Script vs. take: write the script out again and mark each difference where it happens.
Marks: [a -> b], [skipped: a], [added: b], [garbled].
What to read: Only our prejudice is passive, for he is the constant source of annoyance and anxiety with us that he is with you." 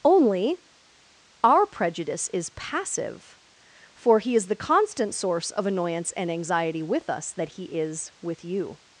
Only our prejudice is passive, for he is the constant source of annoyance and anxiety with us that he is with you."